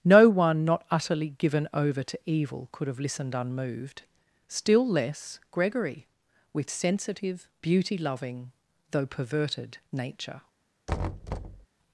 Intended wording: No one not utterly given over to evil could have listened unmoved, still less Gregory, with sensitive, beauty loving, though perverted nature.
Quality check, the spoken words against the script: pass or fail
pass